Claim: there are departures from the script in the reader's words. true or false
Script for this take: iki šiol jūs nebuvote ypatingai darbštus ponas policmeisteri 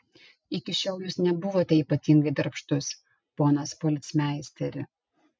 false